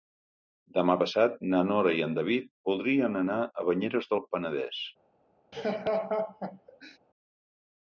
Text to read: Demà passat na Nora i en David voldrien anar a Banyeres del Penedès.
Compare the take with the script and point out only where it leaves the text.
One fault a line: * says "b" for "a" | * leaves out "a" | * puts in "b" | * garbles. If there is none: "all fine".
all fine